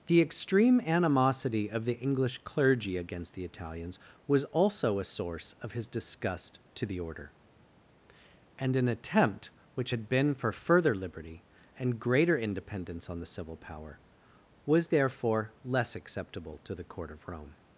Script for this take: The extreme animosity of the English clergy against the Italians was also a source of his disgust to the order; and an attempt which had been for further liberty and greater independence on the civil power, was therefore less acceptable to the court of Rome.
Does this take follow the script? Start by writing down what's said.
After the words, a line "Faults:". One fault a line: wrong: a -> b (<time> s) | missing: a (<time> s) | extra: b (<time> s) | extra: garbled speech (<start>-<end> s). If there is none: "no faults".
The extreme animosity of the English clergy against the Italians was also a source of his disgust to the order; and an attempt which had been for further liberty and greater independence on the civil power, was therefore less acceptable to the court of Rome.
Faults:
no faults